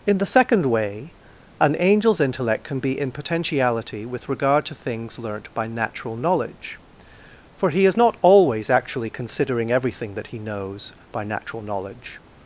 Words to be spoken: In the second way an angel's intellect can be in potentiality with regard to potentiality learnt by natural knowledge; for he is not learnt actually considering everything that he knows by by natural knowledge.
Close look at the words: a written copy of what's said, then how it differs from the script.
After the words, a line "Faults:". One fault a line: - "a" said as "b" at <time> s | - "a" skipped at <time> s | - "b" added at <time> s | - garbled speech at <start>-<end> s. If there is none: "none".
In the second way an angel's intellect can be in potentiality with regard to things learnt by natural knowledge; for he is not always actually considering everything that he knows by natural knowledge.
Faults:
- "potentiality" said as "things" at 4.7 s
- "learnt" said as "always" at 8.2 s
- "by" skipped at 11.2 s